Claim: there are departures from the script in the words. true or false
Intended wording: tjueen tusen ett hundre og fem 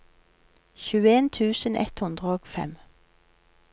false